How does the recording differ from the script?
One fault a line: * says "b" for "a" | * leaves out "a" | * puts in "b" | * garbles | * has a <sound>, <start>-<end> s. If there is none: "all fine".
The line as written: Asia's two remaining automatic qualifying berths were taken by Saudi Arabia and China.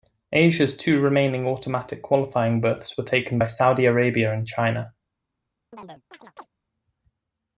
* has a chirp, 5.7-6.5 s